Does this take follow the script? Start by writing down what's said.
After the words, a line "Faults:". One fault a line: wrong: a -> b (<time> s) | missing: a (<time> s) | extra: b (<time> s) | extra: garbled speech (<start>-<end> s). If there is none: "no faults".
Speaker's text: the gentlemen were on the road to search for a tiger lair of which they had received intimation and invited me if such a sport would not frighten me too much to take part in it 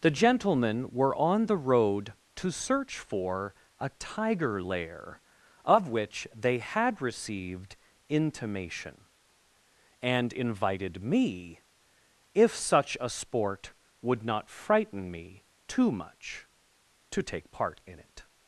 the gentlemen were on the road to search for a tiger lair of which they had received intimation and invited me if such a sport would not frighten me too much to take part in it
Faults:
no faults